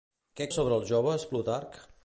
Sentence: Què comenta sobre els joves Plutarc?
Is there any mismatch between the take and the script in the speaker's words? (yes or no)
yes